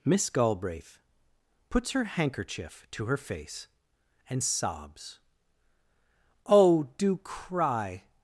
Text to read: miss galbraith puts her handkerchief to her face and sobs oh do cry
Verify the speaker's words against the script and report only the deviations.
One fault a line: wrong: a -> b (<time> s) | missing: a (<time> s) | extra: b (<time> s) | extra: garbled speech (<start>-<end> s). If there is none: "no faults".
no faults